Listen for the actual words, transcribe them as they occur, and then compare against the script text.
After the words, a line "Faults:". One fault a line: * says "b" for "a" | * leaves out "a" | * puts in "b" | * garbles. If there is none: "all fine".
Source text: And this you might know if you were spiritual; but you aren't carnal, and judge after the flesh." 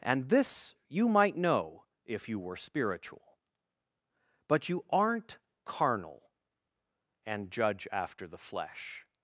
And this you might know if you were spiritual; but you aren't carnal, and judge after the flesh."
Faults:
all fine